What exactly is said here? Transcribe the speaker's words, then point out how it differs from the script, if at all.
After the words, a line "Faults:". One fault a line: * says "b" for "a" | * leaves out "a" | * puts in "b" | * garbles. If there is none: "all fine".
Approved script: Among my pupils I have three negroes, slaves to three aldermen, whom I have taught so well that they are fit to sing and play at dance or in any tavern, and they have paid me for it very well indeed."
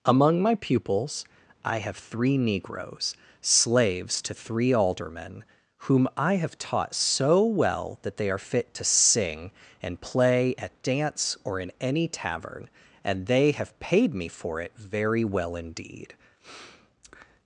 Among my pupils I have three negroes, slaves to three aldermen, whom I have taught so well that they are fit to sing and play at dance or in any tavern, and they have paid me for it very well indeed."
Faults:
all fine